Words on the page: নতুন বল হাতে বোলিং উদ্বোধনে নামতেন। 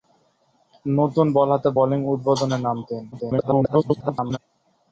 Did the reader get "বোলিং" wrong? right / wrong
right